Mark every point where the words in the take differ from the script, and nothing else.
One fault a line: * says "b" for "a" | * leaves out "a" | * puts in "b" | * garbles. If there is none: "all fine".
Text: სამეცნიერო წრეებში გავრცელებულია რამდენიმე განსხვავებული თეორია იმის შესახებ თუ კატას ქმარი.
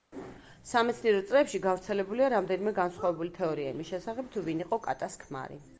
* puts in "ვინ იყო"